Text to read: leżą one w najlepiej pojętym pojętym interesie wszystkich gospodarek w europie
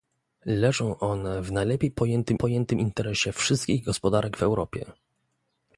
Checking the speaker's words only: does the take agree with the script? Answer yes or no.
yes